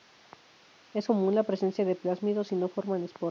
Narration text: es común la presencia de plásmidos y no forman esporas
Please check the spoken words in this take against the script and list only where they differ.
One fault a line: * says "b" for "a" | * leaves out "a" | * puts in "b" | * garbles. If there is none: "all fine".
all fine